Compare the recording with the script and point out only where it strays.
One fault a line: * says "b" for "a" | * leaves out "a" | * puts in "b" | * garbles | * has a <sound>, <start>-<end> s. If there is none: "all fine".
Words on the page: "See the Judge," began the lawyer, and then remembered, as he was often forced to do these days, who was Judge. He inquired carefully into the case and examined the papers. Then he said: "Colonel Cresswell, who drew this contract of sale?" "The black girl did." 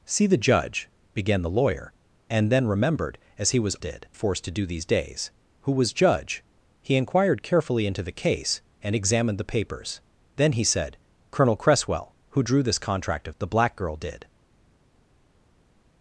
* says "did" for "often"
* leaves out "sale"